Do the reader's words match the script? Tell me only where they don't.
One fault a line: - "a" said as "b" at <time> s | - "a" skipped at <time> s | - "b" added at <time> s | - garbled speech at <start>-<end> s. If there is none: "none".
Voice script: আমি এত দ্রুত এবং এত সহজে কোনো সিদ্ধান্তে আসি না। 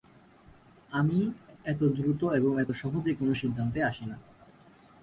none